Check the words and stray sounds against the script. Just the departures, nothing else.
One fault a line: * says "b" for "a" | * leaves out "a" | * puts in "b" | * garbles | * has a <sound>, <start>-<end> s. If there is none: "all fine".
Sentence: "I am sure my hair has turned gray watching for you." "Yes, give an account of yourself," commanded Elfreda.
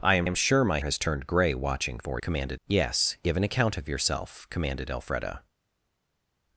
* puts in "am"
* leaves out "hair"
* says "commanded" for "you"